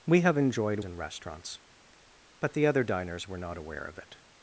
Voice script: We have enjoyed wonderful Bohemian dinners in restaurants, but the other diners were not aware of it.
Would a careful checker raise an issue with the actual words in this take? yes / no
yes